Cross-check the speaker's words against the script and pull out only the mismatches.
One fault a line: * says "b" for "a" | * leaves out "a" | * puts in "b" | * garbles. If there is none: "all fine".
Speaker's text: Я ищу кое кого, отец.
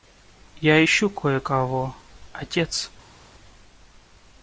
all fine